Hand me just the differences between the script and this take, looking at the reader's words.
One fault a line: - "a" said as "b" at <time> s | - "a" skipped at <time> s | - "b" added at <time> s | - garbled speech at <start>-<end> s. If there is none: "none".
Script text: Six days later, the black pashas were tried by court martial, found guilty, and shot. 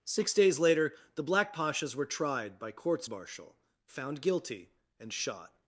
- "court" said as "courts" at 2.7 s